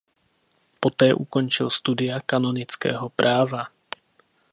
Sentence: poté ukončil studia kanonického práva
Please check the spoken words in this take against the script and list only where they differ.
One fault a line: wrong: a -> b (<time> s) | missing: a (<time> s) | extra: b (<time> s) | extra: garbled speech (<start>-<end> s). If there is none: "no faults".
no faults